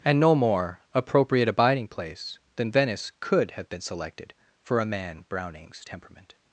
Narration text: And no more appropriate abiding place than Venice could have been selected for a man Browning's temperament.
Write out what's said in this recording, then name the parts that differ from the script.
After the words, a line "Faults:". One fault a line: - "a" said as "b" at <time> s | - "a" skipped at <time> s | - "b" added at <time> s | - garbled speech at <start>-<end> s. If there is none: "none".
And no more appropriate abiding place than Venice could have been selected for a man Browning's temperament.
Faults:
none